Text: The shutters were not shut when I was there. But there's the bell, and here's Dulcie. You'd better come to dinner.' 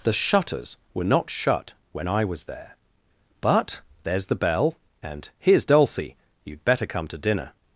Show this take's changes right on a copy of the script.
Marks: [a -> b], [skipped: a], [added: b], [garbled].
The shutters were not shut when I was there. But there's the bell, and here's Dulcie. You'd better come to dinner.'